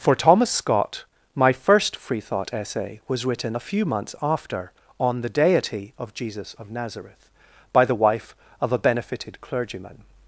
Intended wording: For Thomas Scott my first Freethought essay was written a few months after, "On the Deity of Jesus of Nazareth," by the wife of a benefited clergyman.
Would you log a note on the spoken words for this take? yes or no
no